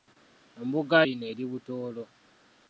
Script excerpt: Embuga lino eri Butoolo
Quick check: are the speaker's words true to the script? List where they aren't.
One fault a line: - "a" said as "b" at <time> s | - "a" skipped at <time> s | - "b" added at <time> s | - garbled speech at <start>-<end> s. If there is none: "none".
none